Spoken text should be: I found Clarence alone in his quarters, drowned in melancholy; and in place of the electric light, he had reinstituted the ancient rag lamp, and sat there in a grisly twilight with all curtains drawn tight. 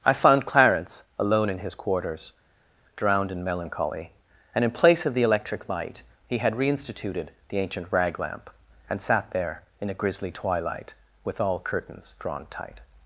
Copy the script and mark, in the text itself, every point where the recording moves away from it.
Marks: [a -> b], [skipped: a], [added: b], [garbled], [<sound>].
I found Clarence alone in his quarters, drowned in melancholy; and in place of the electric light, he had reinstituted the ancient rag lamp, and sat there in a grisly twilight with all curtains drawn tight.